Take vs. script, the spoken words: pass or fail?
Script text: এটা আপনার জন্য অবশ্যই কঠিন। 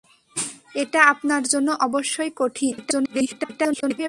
fail